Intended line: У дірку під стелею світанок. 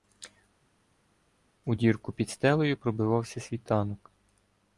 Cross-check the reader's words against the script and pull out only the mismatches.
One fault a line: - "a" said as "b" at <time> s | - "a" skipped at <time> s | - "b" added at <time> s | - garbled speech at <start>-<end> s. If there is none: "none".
- "пробивався" added at 2.7 s